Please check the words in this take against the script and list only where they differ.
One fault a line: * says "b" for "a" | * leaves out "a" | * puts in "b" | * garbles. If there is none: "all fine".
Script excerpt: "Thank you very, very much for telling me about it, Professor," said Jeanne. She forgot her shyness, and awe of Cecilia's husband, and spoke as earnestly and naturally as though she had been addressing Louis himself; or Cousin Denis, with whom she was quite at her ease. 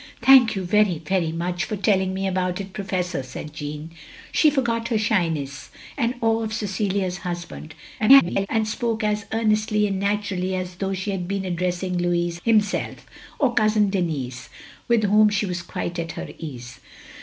* garbles